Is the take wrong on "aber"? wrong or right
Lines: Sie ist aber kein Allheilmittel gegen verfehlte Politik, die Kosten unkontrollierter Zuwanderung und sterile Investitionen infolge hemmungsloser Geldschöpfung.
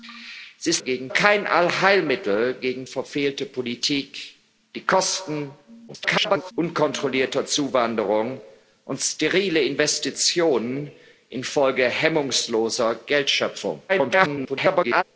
wrong